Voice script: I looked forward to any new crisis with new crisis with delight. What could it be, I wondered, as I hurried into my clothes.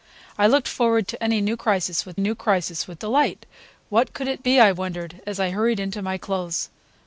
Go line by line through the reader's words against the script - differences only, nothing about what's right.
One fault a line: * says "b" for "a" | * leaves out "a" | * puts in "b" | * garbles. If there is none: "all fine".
all fine